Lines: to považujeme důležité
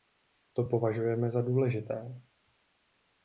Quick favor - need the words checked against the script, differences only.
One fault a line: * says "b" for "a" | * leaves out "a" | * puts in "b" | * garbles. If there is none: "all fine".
* puts in "za"